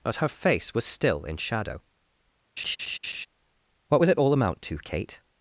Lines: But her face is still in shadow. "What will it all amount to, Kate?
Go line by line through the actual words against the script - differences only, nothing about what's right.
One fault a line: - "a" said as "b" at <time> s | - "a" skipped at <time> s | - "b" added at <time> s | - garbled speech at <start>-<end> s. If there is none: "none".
- "is" said as "was" at 0.7 s